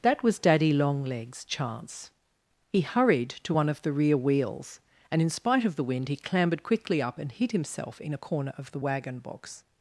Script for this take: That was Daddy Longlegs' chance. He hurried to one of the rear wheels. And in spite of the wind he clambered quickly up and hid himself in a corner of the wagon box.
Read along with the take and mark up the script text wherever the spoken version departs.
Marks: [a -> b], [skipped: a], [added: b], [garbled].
That was Daddy Longlegs' chance. He hurried to one of the rear wheels. And in spite of the wind he clambered quickly up and hid himself in a corner of the wagon box.